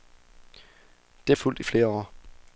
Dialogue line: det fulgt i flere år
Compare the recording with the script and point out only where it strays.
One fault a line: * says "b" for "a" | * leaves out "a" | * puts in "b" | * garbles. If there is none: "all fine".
all fine